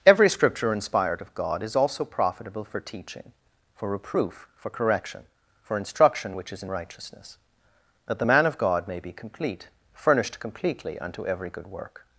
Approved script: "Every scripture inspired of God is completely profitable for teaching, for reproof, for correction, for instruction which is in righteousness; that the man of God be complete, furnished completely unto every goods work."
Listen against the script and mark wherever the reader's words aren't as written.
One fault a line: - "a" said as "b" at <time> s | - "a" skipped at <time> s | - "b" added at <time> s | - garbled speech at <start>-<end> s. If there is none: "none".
- "completely" said as "also" at 1.8 s
- "may" added at 8.9 s
- "goods" said as "good" at 11.5 s